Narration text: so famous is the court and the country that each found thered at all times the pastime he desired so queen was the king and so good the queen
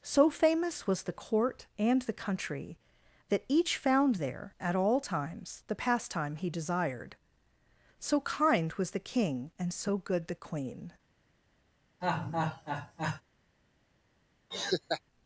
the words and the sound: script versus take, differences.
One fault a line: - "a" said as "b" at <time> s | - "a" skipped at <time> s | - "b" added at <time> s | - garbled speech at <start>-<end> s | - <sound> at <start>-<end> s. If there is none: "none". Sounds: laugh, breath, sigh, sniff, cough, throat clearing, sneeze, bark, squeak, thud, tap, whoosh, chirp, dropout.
- "is" said as "was" at 0.9 s
- "thered" said as "there" at 4.1 s
- "queen" said as "kind" at 8.2 s
- laugh at 12.0-13.2 s
- laugh at 14.5-15.0 s